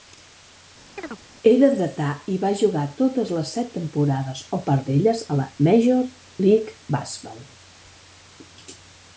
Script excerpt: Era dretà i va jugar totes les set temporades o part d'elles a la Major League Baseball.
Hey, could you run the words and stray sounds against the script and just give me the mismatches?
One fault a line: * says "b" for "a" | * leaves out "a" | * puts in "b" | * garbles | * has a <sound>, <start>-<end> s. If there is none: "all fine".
* has a chirp, 1.0-1.2 s